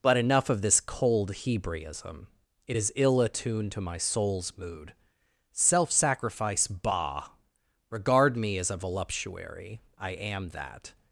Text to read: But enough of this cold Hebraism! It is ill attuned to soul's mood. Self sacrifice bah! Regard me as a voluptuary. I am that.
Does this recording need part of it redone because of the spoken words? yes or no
yes